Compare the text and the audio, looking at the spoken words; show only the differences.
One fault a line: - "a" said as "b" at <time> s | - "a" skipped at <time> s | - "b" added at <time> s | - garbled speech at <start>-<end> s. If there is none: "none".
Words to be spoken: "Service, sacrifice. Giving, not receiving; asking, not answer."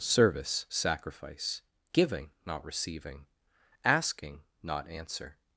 none